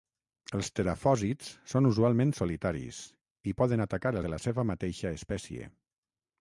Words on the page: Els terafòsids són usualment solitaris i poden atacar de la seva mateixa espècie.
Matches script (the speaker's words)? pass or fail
pass